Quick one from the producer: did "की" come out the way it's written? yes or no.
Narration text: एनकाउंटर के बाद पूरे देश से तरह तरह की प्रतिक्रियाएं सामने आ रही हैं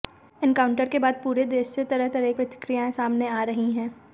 no